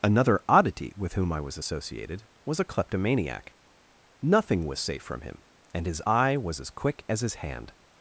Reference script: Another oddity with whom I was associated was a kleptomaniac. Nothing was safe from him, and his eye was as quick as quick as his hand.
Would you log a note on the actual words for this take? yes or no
yes